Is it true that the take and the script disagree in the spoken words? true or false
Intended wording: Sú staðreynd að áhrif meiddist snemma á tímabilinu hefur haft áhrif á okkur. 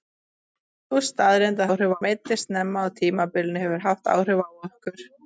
false